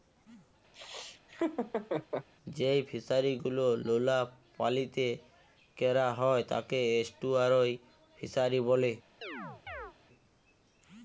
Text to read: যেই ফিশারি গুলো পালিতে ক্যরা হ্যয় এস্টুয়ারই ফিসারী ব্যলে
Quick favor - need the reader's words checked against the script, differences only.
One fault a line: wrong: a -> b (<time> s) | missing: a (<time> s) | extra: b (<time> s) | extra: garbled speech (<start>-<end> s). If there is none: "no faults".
extra: লোলা (3.9 s)
extra: তাকে (6.5 s)